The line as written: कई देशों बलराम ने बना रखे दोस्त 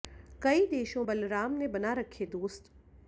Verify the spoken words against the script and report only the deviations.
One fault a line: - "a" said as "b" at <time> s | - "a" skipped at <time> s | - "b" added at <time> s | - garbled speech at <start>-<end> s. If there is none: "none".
none